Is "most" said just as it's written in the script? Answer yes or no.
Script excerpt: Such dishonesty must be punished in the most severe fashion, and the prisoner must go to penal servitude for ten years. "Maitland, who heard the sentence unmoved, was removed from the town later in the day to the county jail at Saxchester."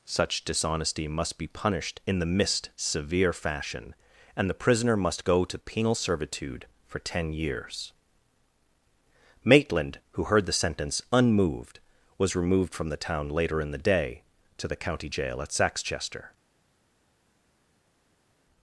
no